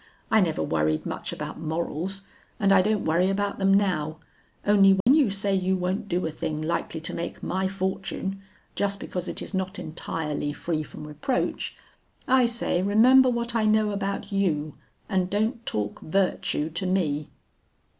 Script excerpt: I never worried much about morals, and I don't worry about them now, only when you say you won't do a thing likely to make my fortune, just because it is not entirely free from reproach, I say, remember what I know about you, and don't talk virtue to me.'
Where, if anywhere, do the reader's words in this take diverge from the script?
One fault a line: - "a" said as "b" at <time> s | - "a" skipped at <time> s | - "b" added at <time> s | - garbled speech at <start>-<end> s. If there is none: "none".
none